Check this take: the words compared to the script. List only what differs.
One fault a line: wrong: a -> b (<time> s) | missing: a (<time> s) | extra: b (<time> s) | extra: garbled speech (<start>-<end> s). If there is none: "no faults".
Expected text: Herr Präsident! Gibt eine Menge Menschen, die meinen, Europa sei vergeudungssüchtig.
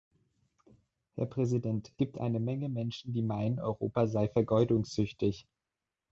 no faults